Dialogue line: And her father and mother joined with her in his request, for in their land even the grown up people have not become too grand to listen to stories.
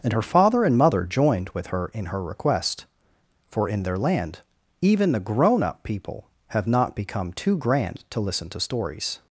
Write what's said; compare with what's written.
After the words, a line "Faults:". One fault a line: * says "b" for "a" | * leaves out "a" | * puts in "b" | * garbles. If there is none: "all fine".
And her father and mother joined with her in her request, for in their land even the grown up people have not become too grand to listen to stories.
Faults:
* says "her" for "his"